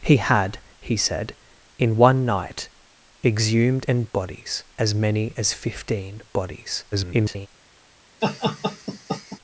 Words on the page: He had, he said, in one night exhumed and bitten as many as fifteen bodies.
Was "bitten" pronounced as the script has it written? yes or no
no